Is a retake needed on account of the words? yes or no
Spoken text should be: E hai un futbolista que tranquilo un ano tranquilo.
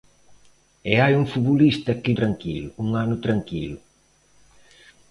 no